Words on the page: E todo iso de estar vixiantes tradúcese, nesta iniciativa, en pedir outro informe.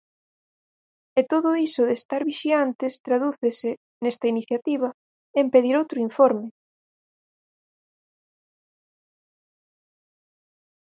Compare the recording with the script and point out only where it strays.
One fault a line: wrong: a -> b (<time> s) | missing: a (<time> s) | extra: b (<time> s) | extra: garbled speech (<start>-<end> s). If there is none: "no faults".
no faults